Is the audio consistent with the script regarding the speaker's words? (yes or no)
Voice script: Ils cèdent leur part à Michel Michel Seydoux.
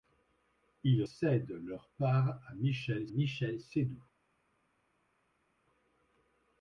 yes